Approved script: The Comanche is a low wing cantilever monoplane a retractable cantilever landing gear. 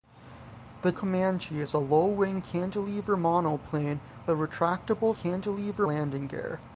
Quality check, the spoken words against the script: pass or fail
pass